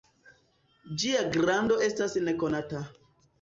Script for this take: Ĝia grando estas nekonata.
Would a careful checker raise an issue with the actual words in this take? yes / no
no